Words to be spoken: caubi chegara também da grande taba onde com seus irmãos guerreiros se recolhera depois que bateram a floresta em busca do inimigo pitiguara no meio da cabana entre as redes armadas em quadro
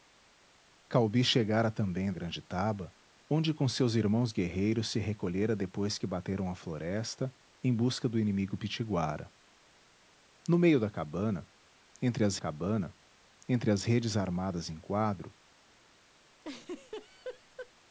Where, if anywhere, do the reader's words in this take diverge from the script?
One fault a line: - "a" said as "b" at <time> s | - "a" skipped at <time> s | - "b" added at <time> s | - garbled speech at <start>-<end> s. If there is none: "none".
- "da" skipped at 2.1 s
- "cabana entre as" added at 12.4 s